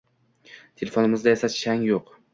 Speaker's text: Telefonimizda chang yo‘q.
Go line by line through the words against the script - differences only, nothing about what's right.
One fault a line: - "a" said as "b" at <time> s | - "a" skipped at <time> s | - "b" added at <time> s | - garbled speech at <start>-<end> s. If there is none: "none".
- "esa" added at 1.4 s